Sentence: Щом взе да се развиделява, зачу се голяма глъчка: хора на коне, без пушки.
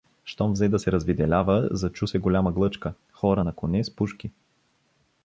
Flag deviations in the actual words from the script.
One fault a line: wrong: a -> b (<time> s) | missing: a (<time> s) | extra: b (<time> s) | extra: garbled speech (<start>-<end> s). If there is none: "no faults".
wrong: без -> с (3.8 s)